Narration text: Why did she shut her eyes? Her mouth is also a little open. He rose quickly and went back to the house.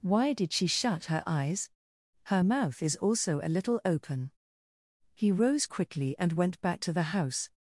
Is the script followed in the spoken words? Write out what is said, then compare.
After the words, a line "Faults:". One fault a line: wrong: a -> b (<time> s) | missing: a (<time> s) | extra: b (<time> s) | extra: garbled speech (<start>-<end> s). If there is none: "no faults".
Why did she shut her eyes? Her mouth is also a little open. He rose quickly and went back to the house.
Faults:
no faults